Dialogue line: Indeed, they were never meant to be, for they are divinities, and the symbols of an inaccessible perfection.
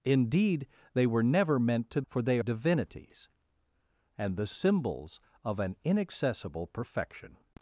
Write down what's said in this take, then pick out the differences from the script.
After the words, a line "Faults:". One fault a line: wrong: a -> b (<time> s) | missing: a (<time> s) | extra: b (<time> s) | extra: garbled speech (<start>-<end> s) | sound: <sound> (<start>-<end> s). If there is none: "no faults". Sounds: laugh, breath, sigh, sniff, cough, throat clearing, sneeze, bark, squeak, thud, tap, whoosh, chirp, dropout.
Indeed, they were never meant to for they divinities, and the symbols of an inaccessible perfection.
Faults:
missing: be (2.0 s)
missing: are (2.4 s)